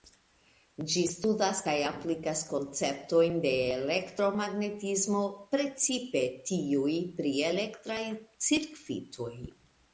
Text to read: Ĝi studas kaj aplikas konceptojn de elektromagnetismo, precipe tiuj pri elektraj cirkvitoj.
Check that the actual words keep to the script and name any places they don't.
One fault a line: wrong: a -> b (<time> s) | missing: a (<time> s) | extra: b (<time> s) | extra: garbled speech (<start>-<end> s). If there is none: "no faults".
no faults